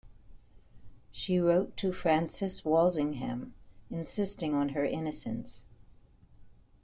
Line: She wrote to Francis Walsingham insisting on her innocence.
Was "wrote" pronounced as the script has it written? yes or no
yes